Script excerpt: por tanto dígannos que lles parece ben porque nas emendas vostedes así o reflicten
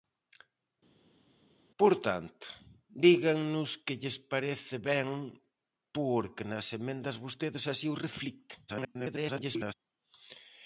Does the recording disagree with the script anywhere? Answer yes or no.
yes